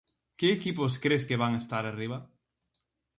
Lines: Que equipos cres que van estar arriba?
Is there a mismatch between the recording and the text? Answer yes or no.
no